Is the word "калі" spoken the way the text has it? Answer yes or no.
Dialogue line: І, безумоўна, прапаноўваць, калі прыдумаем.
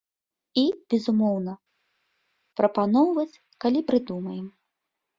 yes